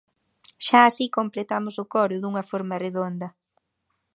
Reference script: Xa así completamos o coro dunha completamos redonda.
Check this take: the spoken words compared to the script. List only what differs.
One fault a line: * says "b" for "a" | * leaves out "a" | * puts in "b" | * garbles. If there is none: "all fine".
* says "forma" for "completamos"